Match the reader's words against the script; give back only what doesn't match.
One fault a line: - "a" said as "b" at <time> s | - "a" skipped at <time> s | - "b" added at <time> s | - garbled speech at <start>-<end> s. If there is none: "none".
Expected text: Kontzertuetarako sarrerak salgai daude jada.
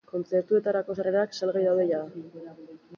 none